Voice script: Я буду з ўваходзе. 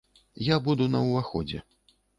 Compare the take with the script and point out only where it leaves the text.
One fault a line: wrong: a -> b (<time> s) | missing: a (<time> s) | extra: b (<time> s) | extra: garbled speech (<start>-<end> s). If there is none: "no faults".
wrong: з -> на (0.9 s)